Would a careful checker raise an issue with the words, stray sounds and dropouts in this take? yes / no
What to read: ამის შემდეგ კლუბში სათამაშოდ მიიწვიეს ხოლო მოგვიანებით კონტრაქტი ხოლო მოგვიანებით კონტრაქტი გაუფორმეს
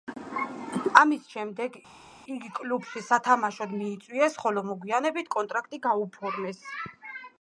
yes